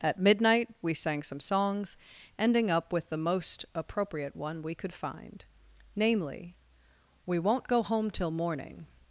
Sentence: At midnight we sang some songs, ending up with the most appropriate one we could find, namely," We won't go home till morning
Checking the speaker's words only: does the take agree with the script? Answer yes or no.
yes